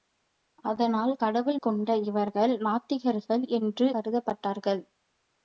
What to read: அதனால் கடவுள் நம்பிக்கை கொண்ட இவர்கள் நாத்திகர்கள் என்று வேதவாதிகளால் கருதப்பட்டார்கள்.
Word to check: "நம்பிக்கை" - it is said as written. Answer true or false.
false